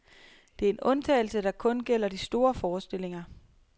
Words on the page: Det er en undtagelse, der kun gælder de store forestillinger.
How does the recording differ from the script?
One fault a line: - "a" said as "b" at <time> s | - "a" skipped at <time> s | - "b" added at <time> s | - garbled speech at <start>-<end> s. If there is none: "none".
none